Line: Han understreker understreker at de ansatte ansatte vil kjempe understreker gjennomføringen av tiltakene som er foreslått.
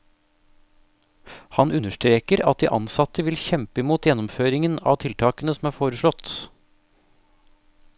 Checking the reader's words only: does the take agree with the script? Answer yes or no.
no